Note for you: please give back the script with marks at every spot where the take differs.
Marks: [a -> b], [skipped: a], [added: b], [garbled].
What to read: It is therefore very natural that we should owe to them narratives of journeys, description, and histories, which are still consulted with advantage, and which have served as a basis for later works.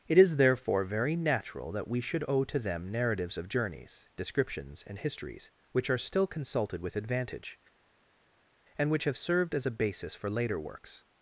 It is therefore very natural that we should owe to them narratives of journeys, [description, -> descriptions] and histories, which are still consulted with advantage, and which have served as a basis for later works.